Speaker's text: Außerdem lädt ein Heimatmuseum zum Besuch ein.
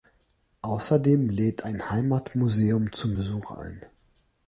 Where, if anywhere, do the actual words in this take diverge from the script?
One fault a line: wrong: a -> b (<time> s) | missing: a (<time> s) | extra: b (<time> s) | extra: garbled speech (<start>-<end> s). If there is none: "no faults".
no faults